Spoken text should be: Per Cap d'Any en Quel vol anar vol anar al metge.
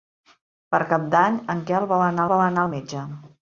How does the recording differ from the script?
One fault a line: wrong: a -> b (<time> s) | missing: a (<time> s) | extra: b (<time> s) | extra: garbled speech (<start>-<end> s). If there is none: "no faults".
no faults